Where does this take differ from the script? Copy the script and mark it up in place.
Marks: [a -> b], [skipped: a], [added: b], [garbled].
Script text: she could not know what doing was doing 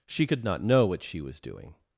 she could not know what [doing -> she] was doing